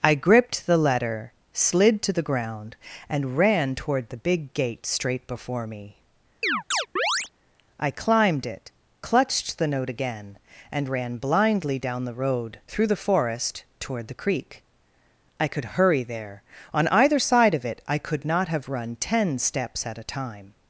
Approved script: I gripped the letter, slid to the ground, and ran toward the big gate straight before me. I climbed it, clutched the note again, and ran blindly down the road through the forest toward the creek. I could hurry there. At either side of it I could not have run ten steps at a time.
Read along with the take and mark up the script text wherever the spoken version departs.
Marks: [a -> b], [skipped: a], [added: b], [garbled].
I gripped the letter, slid to the ground, and ran toward the big gate straight before me. I climbed it, clutched the note again, and ran blindly down the road through the forest toward the creek. I could hurry there. [At -> On] either side of it I could not have run ten steps at a time.